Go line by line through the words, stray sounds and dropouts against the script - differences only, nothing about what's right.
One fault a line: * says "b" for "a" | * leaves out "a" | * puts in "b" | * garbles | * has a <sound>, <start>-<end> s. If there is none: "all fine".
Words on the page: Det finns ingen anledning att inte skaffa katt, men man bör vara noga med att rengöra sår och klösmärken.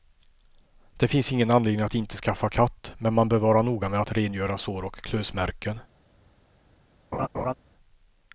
* has a laugh, 7.1-7.5 s